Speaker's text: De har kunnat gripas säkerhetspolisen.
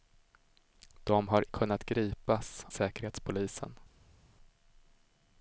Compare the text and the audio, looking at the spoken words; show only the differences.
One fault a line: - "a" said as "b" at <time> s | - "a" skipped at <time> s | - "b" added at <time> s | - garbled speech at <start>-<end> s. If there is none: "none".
none